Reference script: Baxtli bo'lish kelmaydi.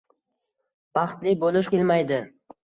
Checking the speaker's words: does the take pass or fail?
pass